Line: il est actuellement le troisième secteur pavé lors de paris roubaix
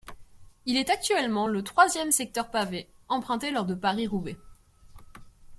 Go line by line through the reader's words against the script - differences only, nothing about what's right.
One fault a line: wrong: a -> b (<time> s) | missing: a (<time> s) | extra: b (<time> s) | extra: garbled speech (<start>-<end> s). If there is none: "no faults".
extra: emprunté (3.1 s)